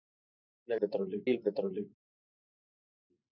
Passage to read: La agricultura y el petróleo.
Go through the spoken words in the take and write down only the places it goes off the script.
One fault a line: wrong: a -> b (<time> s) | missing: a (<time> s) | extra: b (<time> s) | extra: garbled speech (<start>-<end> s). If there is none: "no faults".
wrong: agricultura -> petróleo (0.8 s)